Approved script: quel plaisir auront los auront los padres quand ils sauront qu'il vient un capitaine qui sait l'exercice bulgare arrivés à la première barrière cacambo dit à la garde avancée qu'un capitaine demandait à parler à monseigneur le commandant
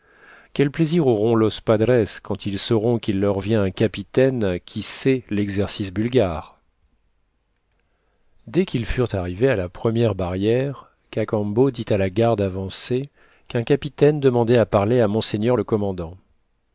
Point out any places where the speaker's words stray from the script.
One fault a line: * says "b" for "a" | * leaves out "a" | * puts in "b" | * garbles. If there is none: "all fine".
* leaves out "auront los"
* puts in "leur"
* puts in "dès qu'ils furent"